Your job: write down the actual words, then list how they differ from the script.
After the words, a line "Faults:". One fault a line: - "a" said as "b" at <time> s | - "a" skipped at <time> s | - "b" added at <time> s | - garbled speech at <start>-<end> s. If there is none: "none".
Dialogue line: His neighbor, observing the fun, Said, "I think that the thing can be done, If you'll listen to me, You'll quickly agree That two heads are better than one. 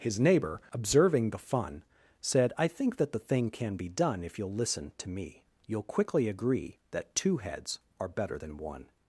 His neighbor, observing the fun, Said, "I think that the thing can be done, If you'll listen to me, You'll quickly agree That two heads are better than one.
Faults:
none